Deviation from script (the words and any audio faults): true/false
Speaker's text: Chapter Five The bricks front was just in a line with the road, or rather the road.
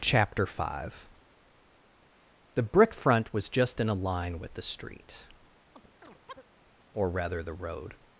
true